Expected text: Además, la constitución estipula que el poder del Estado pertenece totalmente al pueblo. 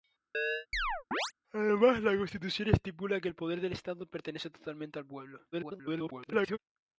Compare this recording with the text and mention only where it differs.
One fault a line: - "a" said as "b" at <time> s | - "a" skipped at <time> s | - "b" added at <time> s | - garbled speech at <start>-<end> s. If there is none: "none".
- garbled speech at 5.5-6.6 s